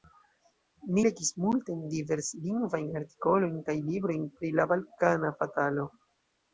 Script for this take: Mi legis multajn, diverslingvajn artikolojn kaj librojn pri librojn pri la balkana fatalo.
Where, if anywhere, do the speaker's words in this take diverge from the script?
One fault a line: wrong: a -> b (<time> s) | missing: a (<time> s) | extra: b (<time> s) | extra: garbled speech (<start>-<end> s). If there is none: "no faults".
missing: librojn pri (4.6 s)